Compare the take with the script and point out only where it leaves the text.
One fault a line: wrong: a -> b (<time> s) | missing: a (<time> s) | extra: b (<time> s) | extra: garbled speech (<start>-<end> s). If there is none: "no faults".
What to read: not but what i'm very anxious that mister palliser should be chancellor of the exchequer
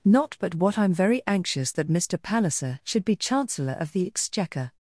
no faults